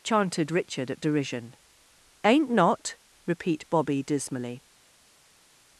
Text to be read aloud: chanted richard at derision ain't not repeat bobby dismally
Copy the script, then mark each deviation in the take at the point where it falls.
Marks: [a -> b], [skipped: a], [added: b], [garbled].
chanted richard at derision ain't not repeat bobby dismally